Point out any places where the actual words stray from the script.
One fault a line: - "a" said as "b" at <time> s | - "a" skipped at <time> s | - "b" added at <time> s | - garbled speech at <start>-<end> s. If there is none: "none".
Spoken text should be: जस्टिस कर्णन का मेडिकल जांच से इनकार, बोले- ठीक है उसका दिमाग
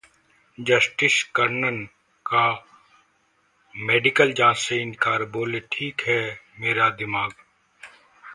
- "उसका" said as "मेरा" at 6.6 s